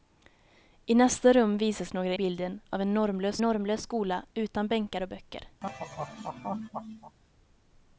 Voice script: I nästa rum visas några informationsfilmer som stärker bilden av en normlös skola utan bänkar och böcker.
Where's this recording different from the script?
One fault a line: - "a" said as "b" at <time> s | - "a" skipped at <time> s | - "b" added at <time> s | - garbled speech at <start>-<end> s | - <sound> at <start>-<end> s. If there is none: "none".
- "informationsfilmer som stärker" skipped at 2.1 s
- "normlös" added at 3.4 s
- laugh at 5.6-7.2 s